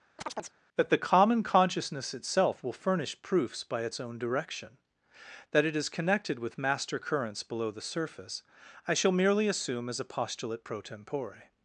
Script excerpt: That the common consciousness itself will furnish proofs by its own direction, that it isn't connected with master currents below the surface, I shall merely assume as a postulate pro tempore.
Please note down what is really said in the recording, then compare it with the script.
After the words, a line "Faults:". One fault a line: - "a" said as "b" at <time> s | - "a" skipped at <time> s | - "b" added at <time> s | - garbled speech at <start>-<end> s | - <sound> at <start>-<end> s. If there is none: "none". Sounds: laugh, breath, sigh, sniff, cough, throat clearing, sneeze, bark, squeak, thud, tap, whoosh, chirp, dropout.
That the common consciousness itself will furnish proofs by its own direction, that it is connected with master currents below the surface, I shall merely assume as a postulate pro tempore.
Faults:
- chirp at 0.2-0.6 s
- "isn't" said as "is" at 5.7 s